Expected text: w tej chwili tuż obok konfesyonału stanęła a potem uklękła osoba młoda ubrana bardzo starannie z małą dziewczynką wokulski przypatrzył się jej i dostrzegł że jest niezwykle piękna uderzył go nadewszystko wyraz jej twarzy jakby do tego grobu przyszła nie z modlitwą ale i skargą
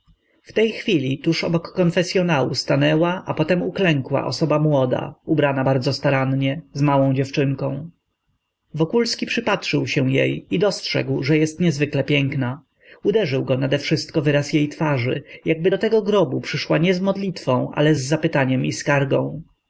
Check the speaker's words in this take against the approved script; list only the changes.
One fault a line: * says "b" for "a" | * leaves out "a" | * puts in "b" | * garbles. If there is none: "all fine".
* puts in "z zapytaniem"